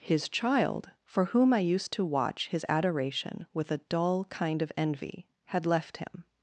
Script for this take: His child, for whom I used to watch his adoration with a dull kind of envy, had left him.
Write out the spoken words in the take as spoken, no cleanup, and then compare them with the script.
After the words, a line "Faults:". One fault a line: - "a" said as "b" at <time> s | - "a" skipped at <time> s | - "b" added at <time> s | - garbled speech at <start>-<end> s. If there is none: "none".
His child, for whom I used to watch his adoration with a dull kind of envy, had left him.
Faults:
none